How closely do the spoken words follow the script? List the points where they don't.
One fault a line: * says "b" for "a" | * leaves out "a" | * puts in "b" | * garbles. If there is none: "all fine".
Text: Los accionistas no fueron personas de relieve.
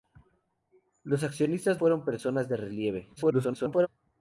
* leaves out "no"
* garbles